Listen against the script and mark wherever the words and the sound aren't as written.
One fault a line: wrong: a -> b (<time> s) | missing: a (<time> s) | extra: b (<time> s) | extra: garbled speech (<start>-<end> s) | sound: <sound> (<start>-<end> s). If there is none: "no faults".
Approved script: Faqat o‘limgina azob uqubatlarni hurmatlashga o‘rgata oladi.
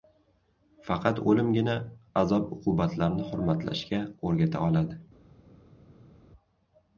no faults